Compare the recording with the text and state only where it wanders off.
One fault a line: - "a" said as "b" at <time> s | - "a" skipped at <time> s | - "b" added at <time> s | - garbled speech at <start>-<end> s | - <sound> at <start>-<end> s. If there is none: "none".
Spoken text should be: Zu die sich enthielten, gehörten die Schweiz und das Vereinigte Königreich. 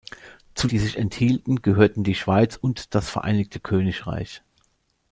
none